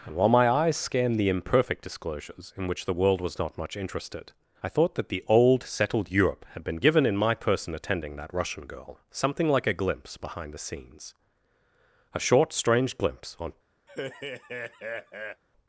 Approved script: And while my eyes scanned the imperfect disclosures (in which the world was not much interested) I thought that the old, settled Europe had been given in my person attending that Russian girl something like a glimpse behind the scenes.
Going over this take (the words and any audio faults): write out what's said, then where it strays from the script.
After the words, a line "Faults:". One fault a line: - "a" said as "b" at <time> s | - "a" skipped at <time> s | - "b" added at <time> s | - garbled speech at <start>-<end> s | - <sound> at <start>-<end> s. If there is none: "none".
And while my eyes scanned the imperfect disclosures (in which the world was not much interested) I thought that the old, settled Europe had been given in my person attending that Russian girl something like a glimpse behind the scenes. A short, strange glimpse on
Faults:
- "A short strange glimpse on" added at 12.2 s
- laugh at 13.9-15.4 s